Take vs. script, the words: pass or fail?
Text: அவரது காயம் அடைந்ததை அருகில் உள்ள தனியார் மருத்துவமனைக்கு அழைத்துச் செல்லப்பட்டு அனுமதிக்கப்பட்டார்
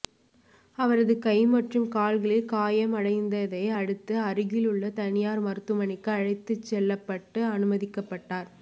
fail